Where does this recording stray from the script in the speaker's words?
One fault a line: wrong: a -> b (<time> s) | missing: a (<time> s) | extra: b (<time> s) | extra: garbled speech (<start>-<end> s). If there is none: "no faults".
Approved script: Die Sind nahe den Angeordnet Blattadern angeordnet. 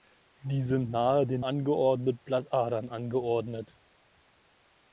no faults